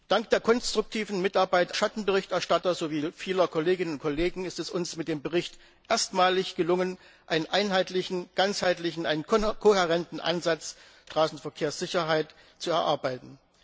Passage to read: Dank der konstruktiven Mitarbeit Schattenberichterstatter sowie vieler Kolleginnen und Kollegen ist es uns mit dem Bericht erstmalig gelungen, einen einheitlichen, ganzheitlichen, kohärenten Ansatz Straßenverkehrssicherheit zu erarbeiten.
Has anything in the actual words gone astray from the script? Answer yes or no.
no